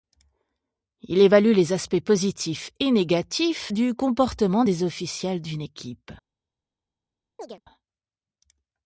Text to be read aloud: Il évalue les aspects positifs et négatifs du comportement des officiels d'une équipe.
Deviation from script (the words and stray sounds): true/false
true